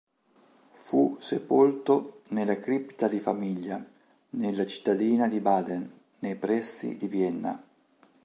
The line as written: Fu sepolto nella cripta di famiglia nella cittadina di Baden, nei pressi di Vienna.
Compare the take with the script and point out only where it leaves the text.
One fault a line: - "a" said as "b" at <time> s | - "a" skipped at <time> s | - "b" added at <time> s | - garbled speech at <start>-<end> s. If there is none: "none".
none